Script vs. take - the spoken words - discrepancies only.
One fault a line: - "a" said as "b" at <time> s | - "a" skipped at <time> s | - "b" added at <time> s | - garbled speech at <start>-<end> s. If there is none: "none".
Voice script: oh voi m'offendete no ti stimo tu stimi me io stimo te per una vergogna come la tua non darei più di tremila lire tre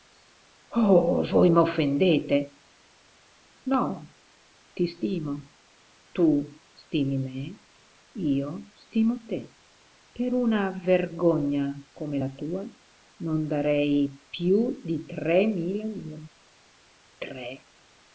none